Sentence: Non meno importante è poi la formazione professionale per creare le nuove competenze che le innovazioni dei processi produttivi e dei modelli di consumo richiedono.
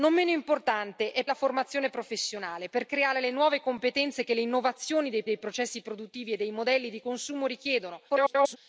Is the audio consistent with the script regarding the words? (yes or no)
no